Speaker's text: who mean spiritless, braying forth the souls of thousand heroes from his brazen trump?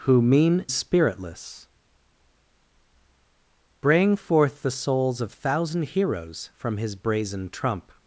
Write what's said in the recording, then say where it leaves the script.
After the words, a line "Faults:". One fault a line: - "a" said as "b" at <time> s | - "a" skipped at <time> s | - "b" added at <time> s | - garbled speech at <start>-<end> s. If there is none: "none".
who mean spiritless, braying forth the souls of thousand heroes from his brazen trump?
Faults:
none